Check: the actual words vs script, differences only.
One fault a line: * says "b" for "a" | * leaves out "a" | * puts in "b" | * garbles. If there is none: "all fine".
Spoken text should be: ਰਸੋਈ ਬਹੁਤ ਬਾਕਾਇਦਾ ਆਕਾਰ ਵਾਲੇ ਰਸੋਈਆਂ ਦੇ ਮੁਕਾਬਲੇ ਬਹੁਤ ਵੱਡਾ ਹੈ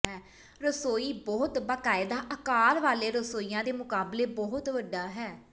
all fine